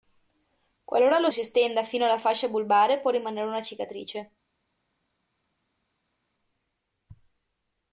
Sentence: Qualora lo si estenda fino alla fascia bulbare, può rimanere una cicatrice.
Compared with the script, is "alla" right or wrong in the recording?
right